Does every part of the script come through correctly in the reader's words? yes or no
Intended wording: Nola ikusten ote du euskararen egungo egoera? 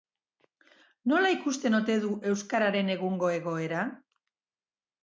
yes